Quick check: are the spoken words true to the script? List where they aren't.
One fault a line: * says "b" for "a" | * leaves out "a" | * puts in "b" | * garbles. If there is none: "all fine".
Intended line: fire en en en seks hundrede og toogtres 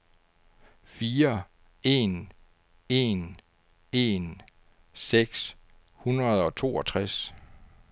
all fine